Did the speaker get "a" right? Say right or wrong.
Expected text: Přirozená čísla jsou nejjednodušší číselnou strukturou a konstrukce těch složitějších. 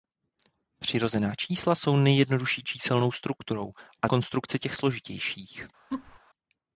right